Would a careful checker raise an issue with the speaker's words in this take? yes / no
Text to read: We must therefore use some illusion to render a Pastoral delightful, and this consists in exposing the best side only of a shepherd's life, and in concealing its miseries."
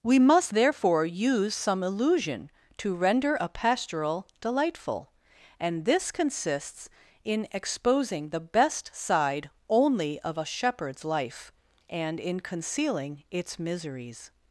no